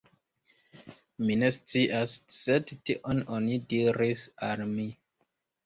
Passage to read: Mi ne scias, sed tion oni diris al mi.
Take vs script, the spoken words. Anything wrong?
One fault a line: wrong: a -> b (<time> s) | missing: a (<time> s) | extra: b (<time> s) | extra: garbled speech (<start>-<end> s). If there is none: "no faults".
no faults